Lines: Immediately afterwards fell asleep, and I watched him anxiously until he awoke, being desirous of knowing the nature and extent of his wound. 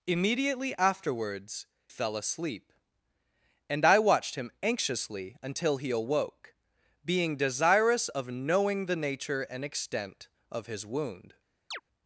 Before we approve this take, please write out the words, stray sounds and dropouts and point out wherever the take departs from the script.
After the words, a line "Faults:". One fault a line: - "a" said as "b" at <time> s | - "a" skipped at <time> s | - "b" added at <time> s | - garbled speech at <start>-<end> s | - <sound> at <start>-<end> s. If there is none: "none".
Immediately afterwards fell asleep, and I watched him anxiously until he awoke, being desirous of knowing the nature and extent of his wound.
Faults:
- chirp at 11.7-11.8 s